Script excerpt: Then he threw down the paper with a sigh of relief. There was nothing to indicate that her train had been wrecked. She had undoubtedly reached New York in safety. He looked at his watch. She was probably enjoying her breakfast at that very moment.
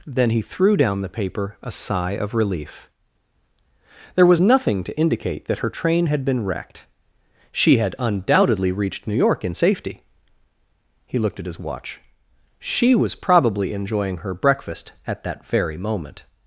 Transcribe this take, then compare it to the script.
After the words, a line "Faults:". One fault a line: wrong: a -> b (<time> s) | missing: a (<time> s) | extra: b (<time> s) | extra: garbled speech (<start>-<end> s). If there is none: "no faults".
Then he threw down the paper a sigh of relief. There was nothing to indicate that her train had been wrecked. She had undoubtedly reached New York in safety. He looked at his watch. She was probably enjoying her breakfast at that very moment.
Faults:
missing: with (1.6 s)